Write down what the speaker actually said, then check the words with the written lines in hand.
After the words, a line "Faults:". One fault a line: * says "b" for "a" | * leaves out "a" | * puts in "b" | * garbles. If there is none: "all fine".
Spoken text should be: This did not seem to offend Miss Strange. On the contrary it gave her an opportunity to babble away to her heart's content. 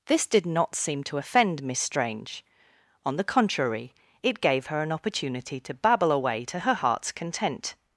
This did not seem to offend Miss Strange. On the contrary it gave her an opportunity to babble away to her heart's content.
Faults:
all fine